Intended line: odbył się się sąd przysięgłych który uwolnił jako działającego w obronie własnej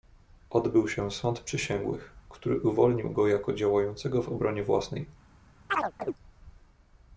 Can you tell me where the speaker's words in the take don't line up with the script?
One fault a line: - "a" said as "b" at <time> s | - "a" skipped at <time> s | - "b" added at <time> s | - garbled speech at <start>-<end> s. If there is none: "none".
- "się" skipped at 1.1 s
- "go" added at 3.1 s